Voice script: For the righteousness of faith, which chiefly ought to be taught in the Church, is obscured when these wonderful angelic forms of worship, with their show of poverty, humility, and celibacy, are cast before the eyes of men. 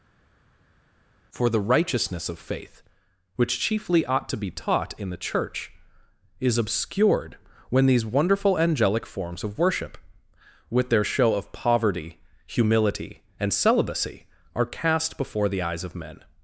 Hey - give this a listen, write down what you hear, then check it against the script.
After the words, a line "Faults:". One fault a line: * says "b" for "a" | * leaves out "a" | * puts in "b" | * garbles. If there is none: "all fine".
For the righteousness of faith, which chiefly ought to be taught in the Church, is obscured when these wonderful angelic forms of worship, with their show of poverty, humility, and celibacy, are cast before the eyes of men.
Faults:
all fine